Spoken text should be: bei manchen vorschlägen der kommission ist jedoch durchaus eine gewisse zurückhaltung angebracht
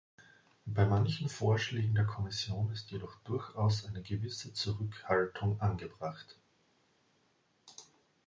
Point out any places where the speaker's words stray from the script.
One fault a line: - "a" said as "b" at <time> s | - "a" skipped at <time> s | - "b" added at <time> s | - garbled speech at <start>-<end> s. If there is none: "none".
none